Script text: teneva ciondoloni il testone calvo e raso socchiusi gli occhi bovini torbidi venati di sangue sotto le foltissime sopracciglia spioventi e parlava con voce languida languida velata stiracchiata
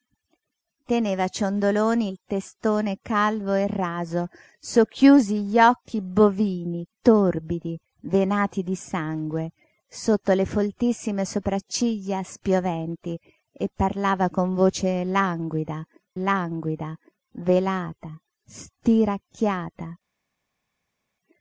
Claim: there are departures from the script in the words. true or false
false